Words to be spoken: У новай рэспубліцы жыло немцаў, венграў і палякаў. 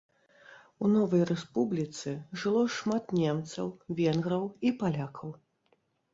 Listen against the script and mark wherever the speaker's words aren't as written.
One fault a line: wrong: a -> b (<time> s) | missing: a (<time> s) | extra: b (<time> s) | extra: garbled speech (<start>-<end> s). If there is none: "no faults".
extra: шмат (2.8 s)